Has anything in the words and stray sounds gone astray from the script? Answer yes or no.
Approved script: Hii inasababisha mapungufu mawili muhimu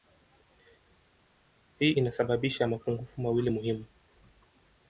no